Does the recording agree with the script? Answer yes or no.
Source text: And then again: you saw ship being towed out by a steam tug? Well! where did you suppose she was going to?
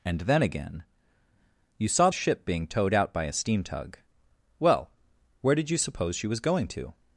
yes